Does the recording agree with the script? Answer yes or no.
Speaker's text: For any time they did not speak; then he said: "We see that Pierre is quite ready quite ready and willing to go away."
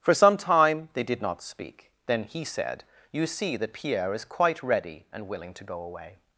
no